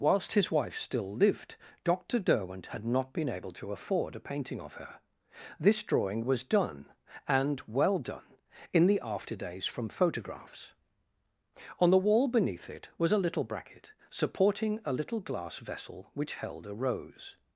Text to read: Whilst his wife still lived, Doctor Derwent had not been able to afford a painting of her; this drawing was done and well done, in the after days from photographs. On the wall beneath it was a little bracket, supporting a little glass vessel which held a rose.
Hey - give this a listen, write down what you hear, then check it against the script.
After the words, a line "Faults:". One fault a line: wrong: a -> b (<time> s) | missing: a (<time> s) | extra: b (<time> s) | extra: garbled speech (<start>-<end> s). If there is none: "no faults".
Whilst his wife still lived, Doctor Derwent had not been able to afford a painting of her; this drawing was done and well done, in the after days from photographs. On the wall beneath it was a little bracket, supporting a little glass vessel which held a rose.
Faults:
no faults